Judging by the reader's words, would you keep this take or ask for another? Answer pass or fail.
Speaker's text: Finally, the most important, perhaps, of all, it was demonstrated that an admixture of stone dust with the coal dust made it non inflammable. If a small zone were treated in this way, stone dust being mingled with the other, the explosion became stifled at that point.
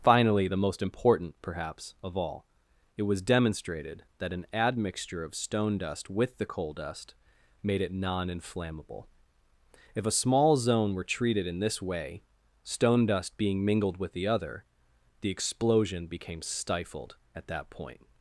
pass